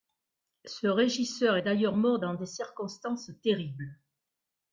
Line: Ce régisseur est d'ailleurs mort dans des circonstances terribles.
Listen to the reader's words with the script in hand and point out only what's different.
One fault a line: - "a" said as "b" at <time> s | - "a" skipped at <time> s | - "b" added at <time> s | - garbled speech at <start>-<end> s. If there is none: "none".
none